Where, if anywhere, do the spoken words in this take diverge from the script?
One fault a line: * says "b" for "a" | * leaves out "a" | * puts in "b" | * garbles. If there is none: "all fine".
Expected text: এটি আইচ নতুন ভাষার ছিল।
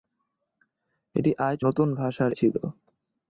all fine